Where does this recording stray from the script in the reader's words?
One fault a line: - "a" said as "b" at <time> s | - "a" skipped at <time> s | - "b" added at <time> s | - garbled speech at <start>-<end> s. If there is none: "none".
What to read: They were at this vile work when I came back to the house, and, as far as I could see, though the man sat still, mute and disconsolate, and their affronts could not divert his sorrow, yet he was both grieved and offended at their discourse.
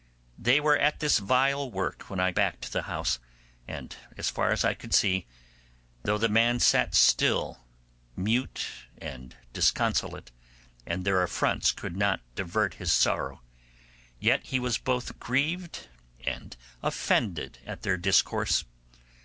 - "came" skipped at 2.3 s